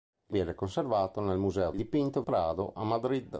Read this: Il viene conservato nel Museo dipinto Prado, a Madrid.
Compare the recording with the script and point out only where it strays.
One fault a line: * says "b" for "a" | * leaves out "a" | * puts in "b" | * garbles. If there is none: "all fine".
all fine